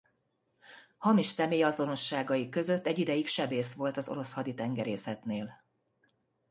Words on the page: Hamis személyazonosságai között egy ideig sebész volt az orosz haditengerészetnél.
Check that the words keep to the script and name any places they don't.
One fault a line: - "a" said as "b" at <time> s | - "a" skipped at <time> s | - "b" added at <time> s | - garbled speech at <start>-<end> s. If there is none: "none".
none